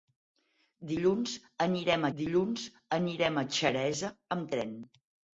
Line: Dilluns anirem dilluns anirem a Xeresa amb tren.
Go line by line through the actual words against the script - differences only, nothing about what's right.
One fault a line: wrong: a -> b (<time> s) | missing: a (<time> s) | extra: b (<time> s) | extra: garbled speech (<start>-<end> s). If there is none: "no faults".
no faults